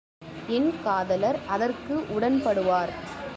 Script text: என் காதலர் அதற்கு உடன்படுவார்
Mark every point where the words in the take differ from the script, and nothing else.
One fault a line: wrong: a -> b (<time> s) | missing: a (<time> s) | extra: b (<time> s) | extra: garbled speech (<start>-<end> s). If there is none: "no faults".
no faults